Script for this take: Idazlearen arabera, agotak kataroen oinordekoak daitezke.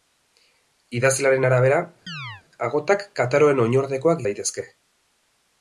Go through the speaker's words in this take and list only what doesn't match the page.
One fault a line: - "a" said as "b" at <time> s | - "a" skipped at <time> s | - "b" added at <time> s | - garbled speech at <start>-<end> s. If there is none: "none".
none